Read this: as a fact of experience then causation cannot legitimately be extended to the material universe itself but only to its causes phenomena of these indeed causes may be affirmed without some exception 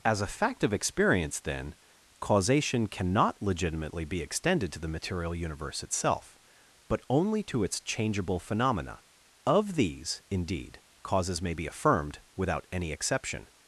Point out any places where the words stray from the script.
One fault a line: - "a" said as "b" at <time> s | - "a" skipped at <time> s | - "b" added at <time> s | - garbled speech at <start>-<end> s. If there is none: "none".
- "causes" said as "changeable" at 7.8 s
- "some" said as "any" at 12.7 s